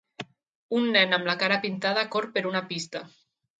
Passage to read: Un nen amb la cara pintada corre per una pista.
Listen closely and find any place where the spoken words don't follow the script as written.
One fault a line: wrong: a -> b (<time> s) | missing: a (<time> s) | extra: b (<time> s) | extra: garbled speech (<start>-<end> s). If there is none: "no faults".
no faults